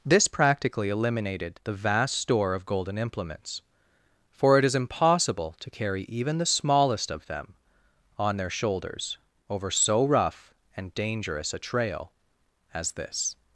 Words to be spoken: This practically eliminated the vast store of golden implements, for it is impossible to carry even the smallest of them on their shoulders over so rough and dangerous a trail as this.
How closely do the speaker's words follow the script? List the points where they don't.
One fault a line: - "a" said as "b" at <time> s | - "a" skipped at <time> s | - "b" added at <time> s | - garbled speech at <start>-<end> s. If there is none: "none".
none